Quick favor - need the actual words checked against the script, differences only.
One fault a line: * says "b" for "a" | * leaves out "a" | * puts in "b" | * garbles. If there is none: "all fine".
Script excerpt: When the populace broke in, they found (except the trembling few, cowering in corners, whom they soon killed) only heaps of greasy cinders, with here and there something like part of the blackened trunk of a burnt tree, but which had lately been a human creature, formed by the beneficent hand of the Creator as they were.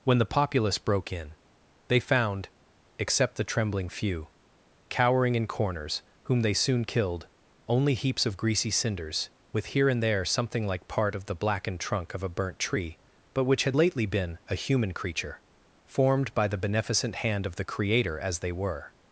all fine